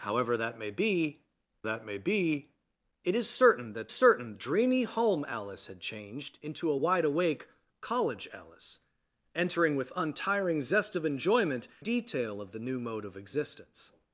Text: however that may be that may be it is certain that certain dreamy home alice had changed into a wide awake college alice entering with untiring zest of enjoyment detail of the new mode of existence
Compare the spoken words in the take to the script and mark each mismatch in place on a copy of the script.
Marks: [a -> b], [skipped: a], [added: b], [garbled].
however that may be that may be it is certain that certain dreamy home alice had changed into a wide awake college alice entering with untiring zest of enjoyment detail of the new mode of existence